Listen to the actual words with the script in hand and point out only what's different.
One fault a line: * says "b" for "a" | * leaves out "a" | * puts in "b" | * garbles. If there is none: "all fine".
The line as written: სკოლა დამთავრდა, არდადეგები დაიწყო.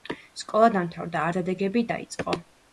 all fine